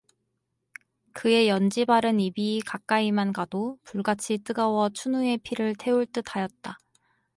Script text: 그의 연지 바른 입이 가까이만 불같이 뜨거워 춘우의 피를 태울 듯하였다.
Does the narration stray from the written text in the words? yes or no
yes